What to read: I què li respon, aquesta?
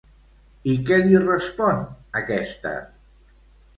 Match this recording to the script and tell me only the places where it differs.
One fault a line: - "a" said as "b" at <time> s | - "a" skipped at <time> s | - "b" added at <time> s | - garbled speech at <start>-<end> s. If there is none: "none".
none